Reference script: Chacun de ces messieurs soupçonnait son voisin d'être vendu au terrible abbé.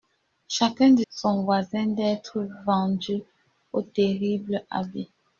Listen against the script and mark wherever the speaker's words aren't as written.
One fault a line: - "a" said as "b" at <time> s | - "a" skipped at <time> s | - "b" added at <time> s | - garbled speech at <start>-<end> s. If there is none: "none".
- "ces messieurs soupçonnait" skipped at 1.0 s